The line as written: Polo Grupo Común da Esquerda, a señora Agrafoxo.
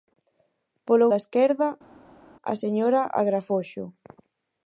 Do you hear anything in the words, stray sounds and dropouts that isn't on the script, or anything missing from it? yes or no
yes